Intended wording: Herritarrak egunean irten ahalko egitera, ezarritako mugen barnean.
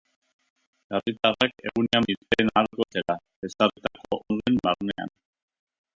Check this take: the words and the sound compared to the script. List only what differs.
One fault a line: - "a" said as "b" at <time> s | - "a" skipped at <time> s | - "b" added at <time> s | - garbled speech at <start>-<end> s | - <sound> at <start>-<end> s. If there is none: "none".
none